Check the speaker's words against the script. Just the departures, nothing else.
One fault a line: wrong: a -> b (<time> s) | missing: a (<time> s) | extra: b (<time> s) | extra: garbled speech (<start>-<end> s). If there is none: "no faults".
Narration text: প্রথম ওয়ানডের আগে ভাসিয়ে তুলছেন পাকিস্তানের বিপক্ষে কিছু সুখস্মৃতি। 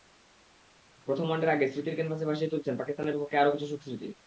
extra: স্মৃতির ক্যানভাসে (1.7 s)
extra: আরও (3.4 s)